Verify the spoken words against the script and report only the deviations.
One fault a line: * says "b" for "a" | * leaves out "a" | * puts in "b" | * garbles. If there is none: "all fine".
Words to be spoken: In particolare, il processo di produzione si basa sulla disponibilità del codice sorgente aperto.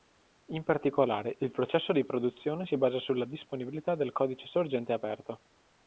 all fine